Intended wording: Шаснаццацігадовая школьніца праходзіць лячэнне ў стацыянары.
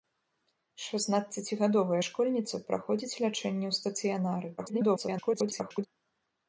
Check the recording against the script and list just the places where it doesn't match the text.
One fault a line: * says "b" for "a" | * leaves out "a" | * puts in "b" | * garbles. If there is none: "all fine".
* garbles